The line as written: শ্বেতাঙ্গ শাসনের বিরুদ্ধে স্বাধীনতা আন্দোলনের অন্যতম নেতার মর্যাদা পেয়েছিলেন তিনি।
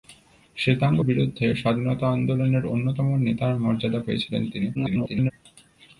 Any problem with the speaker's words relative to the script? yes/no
yes